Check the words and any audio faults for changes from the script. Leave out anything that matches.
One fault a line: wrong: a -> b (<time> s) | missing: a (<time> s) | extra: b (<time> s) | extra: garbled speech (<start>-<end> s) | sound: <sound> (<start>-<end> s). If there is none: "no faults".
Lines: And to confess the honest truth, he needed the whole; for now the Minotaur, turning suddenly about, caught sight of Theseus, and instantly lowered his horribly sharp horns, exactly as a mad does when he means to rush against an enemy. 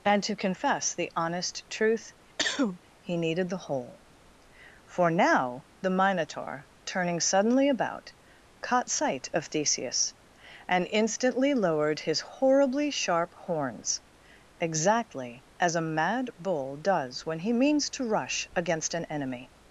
sound: cough (2.4-2.8 s)
extra: bull (16.4 s)